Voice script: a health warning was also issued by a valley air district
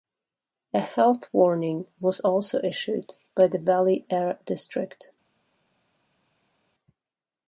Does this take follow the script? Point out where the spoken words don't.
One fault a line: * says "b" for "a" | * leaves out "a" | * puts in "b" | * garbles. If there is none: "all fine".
* says "the" for "a"